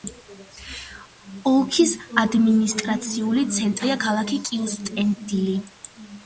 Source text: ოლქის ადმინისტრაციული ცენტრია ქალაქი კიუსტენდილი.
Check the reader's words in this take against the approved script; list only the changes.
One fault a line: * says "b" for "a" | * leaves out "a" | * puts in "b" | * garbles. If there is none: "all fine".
all fine